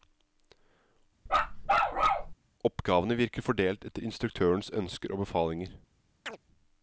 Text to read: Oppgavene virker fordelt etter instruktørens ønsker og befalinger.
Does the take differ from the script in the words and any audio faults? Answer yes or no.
yes